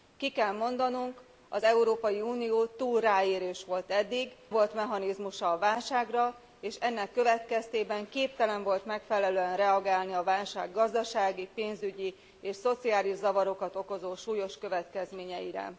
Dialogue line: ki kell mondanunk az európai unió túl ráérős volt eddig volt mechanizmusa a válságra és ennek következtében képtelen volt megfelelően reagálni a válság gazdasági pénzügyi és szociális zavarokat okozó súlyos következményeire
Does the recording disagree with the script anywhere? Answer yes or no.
no